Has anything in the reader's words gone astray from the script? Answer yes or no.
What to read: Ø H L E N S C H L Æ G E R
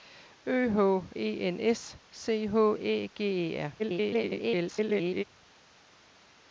yes